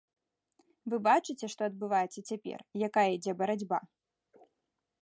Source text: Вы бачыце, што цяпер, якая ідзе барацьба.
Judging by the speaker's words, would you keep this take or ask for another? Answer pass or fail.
fail